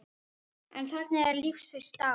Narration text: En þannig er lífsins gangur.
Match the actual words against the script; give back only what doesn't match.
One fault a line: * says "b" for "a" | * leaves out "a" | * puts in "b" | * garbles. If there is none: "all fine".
all fine